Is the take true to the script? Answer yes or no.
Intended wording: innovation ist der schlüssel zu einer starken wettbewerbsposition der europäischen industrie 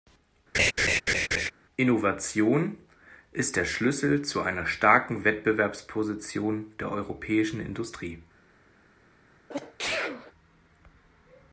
yes